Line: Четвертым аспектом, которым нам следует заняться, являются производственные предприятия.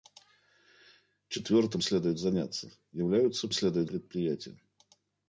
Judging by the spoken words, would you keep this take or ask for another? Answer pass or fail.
fail